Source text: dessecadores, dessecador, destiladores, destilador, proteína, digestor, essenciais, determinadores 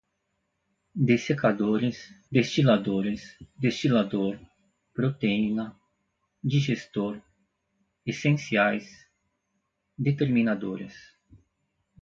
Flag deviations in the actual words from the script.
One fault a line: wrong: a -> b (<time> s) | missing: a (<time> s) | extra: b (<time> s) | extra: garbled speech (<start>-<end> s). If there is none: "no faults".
missing: dessecador (2.1 s)